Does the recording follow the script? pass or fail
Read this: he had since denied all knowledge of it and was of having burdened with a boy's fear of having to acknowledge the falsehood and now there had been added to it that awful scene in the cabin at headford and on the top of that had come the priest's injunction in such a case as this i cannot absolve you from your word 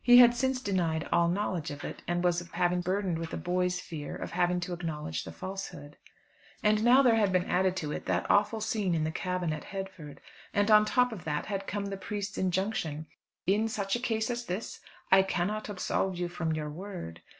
pass